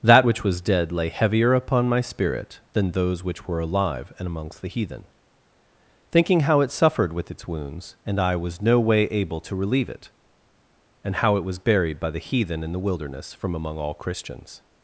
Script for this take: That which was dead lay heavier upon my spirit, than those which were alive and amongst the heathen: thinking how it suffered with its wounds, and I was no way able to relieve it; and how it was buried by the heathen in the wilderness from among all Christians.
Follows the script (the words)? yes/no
yes